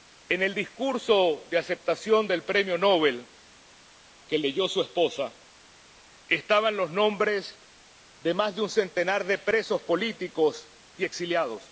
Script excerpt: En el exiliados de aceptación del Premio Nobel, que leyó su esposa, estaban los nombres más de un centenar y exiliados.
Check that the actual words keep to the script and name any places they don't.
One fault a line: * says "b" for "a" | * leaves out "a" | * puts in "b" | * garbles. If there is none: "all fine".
* says "discurso" for "exiliados"
* puts in "de"
* puts in "de presos políticos"